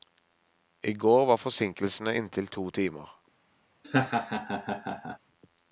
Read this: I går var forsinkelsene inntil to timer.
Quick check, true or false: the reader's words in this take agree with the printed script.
true